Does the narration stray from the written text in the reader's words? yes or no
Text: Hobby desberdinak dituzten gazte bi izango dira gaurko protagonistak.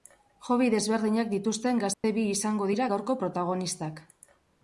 no